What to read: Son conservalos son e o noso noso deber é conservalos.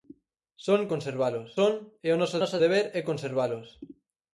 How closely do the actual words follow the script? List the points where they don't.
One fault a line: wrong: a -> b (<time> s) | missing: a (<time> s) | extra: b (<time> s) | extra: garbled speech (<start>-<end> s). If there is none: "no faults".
no faults